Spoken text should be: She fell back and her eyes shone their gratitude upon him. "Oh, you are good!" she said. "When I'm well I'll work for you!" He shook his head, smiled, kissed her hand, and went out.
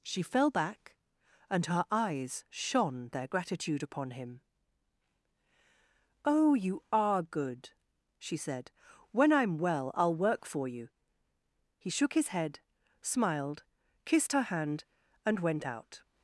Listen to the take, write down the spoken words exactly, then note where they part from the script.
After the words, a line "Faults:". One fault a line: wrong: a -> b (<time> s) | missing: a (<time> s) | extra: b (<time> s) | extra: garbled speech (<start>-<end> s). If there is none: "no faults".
She fell back and her eyes shone their gratitude upon him. "Oh, you are good!" she said. "When I'm well I'll work for you!" He shook his head, smiled, kissed her hand, and went out.
Faults:
no faults